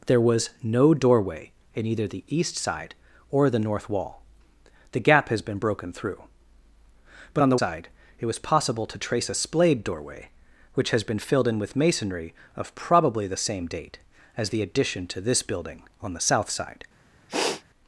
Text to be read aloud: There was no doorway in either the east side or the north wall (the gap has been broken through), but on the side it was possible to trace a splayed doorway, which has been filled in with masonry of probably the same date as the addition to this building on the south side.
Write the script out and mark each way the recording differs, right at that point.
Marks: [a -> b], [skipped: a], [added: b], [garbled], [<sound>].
There was no doorway in either the east side or the north wall (the gap has been broken through), but on the side it was possible to trace a splayed doorway, which has been filled in with masonry of probably the same date as the addition to this building on the south side. [sniff]